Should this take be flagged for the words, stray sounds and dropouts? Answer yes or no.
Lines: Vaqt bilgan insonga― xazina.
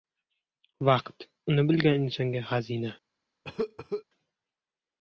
yes